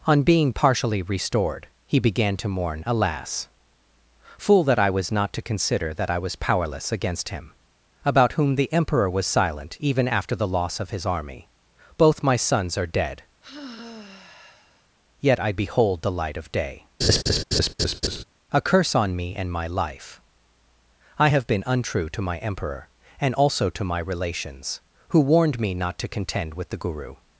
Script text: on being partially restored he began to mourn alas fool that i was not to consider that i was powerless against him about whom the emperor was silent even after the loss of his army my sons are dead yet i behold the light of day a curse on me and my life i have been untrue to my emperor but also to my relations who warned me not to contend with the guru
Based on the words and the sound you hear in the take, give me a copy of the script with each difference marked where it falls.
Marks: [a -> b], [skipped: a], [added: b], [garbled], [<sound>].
on being partially restored he began to mourn alas fool that i was not to consider that i was powerless against him about whom the emperor was silent even after the loss of his army [added: both] my sons are dead [sigh] yet i behold the light of day [laugh] a curse on me and my life i have been untrue to my emperor [but -> and] also to my relations who warned me not to contend with the guru